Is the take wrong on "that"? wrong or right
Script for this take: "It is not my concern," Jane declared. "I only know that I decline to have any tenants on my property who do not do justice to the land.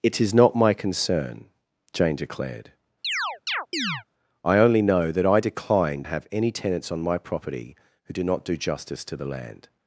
right